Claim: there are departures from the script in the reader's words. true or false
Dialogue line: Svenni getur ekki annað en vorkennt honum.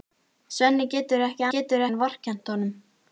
true